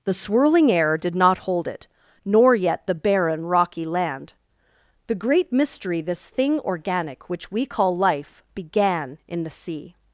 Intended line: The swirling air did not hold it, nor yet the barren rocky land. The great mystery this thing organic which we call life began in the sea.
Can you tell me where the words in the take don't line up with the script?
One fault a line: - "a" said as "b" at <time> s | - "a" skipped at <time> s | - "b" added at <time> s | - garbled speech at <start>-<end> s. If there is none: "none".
none